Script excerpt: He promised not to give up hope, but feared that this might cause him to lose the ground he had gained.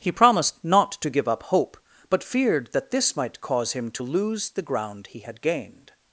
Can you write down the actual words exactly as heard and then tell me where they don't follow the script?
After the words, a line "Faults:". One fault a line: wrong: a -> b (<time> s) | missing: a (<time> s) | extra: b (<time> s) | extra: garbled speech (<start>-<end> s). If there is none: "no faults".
He promised not to give up hope, but feared that this might cause him to lose the ground he had gained.
Faults:
no faults